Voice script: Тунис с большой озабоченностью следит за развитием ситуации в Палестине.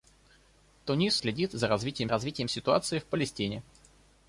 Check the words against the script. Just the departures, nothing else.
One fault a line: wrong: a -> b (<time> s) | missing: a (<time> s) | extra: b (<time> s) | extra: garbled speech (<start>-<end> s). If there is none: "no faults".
missing: с большой озабоченностью (1.2 s)
extra: развитием (2.1 s)